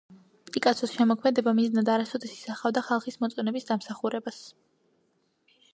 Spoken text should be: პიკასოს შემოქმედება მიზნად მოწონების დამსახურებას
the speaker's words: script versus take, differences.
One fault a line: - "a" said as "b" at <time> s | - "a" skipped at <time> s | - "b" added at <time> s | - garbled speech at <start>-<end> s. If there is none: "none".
- "არასოდეს ისახავდა ხალხის" added at 2.0 s